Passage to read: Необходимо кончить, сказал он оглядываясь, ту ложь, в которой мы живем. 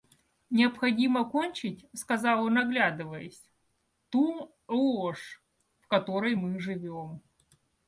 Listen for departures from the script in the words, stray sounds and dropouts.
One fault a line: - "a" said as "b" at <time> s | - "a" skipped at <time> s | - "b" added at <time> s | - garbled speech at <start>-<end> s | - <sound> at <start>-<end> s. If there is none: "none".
none